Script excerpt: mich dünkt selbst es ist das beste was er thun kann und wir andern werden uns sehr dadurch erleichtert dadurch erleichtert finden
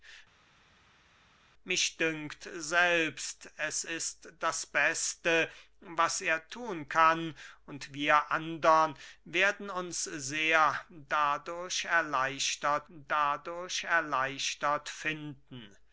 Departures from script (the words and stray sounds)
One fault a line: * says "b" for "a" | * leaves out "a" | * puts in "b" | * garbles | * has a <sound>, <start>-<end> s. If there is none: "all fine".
all fine